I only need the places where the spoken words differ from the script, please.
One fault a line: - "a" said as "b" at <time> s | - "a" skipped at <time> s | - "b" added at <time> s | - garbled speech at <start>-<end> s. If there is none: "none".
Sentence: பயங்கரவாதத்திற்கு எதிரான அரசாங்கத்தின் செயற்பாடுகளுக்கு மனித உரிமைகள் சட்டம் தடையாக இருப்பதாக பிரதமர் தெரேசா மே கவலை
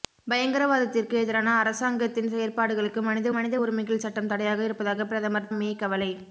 - "மனித" added at 3.3 s
- "தெரேசா" skipped at 5.5 s